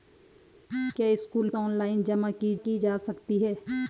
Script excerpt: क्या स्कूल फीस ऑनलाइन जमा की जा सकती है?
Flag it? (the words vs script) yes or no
yes